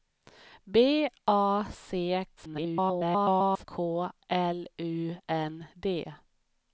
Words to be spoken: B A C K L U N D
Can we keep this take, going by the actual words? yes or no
no